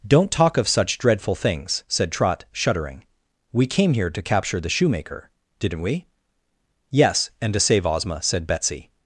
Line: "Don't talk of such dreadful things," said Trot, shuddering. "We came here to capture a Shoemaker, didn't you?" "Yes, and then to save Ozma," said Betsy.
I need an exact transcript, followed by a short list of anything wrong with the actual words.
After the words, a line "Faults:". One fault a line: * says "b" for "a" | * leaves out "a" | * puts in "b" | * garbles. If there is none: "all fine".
"Don't talk of such dreadful things," said Trot, shuddering. "We came here to capture the Shoemaker, didn't we?" "Yes, and to save Ozma," said Betsy.
Faults:
* says "the" for "a"
* says "we" for "you"
* leaves out "then"